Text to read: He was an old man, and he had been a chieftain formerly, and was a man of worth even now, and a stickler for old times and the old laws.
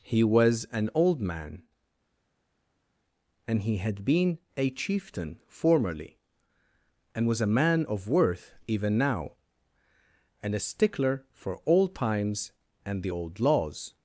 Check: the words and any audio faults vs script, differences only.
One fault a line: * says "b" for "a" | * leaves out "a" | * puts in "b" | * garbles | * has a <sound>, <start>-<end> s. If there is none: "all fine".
all fine